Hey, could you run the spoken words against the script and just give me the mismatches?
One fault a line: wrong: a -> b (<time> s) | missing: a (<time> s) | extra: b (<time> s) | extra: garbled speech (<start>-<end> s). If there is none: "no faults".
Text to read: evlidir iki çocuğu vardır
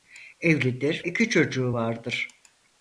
no faults